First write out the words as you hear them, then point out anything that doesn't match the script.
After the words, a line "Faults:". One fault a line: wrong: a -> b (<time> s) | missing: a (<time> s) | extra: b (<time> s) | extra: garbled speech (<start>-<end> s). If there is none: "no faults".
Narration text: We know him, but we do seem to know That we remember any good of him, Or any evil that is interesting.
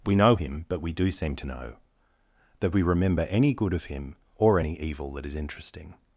We know him, but we do seem to know That we remember any good of him, Or any evil that is interesting.
Faults:
no faults